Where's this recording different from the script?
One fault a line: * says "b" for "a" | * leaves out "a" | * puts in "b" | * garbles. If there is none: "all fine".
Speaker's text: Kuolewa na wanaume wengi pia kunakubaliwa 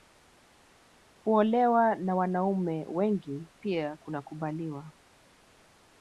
all fine